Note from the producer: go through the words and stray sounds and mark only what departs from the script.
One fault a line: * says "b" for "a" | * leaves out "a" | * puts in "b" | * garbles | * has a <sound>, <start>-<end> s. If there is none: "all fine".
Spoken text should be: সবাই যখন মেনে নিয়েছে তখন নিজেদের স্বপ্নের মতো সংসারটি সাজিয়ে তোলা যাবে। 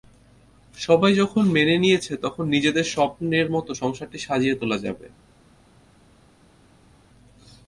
all fine